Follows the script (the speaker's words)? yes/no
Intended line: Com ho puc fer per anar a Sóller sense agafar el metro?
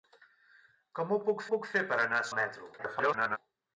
no